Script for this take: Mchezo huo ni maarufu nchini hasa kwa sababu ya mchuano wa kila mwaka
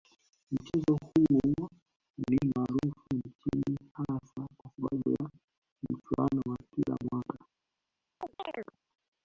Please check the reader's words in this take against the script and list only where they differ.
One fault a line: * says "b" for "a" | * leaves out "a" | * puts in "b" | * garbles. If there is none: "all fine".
all fine